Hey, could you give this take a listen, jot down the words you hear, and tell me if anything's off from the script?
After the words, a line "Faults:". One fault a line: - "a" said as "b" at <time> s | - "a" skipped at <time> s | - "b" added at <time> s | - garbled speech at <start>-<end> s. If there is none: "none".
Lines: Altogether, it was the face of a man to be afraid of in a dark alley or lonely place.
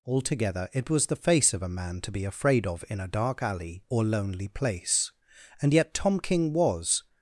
Altogether, it was the face of a man to be afraid of in a dark alley or lonely place. And yet Tom King was
Faults:
- "And yet Tom King was" added at 5.6 s